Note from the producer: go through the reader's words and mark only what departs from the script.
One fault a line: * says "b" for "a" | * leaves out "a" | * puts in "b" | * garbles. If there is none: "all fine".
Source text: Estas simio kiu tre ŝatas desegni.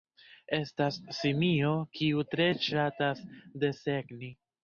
all fine